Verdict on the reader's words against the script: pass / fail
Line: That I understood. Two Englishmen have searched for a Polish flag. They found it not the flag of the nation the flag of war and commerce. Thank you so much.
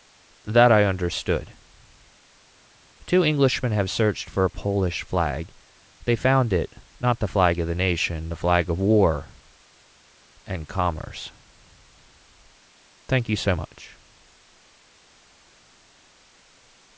pass